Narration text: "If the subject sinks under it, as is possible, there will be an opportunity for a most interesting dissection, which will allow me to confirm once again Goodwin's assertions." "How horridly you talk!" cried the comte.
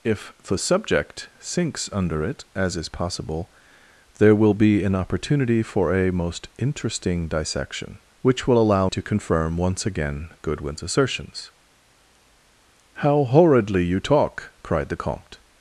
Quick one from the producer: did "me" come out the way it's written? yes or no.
no